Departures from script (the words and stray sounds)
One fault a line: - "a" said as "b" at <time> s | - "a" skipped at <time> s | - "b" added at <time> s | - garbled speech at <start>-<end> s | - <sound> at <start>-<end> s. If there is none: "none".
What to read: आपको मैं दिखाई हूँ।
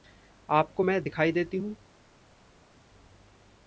- "देती" added at 1.3 s